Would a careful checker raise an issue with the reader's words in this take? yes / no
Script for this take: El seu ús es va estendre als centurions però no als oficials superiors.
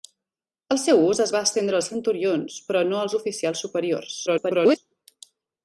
yes